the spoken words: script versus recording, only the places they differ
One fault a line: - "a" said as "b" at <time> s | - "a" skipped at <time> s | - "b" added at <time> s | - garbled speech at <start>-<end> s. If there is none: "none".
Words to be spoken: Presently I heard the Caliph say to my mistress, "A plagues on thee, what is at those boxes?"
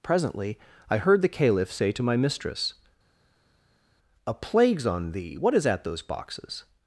none